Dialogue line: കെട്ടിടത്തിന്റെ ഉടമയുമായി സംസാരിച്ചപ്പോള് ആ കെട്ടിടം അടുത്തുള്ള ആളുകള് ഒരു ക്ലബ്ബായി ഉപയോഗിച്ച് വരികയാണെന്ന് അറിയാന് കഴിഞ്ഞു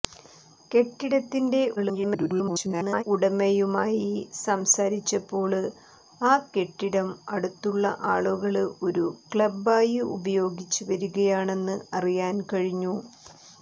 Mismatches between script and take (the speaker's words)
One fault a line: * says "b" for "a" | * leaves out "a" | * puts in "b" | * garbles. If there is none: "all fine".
* garbles